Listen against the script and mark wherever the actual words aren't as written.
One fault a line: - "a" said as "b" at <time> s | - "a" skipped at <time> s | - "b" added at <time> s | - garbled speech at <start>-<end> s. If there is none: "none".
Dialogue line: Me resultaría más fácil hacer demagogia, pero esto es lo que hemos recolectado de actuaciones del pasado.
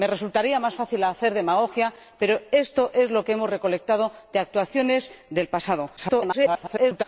- garbled speech at 6.0-7.0 s